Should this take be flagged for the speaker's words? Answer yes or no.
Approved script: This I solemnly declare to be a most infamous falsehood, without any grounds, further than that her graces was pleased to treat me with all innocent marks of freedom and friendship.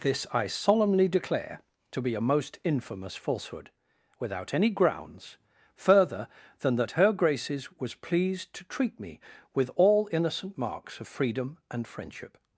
no